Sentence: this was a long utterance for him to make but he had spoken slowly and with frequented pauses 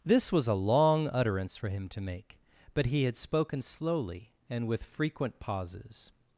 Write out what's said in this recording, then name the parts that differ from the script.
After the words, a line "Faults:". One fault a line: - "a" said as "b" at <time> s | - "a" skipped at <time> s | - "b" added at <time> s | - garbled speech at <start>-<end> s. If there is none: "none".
this was a long utterance for him to make but he had spoken slowly and with frequent pauses
Faults:
- "frequented" said as "frequent" at 4.8 s